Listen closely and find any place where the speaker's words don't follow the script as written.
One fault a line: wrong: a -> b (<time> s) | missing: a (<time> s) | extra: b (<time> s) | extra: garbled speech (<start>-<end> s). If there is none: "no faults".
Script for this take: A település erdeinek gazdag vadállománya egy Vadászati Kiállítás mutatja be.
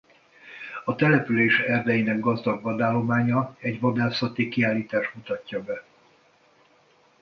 no faults